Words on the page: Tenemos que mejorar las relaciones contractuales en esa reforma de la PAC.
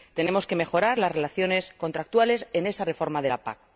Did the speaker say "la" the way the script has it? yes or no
yes